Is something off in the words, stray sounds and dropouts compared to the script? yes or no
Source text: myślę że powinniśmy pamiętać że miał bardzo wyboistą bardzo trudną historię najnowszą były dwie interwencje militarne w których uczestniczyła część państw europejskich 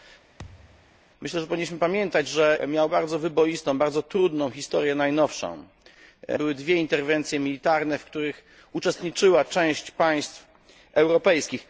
yes